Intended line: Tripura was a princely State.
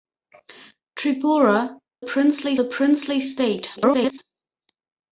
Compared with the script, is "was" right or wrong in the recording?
wrong